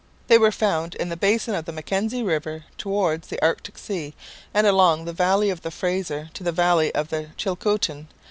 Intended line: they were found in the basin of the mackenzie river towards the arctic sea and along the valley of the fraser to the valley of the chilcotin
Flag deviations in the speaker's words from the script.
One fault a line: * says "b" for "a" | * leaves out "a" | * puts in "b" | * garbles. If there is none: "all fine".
all fine